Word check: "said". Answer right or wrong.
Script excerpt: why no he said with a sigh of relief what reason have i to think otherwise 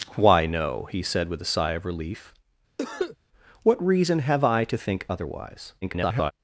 right